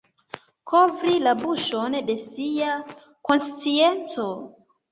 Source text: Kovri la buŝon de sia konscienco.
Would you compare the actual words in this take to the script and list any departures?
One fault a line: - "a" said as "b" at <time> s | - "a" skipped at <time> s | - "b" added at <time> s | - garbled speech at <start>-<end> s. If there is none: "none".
none